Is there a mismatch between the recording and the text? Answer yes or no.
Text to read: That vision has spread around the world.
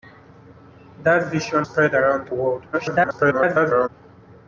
yes